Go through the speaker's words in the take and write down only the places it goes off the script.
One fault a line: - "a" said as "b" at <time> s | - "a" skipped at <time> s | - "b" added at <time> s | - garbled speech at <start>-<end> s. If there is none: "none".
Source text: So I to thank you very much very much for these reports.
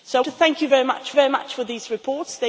none